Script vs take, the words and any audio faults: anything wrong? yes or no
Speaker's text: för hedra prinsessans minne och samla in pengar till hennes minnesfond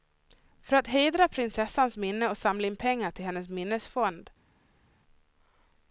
yes